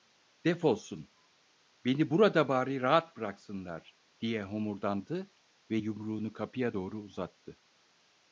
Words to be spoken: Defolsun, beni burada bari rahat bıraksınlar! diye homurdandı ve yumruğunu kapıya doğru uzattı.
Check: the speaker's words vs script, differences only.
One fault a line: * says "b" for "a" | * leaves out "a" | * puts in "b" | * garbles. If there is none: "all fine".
all fine